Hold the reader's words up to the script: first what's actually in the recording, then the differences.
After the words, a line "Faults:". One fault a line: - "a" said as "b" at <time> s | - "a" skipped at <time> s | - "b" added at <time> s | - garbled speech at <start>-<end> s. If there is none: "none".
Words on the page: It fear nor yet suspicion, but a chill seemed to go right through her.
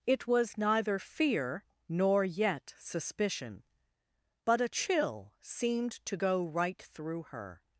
It was neither fear nor yet suspicion, but a chill seemed to go right through her.
Faults:
- "was neither" added at 0.2 s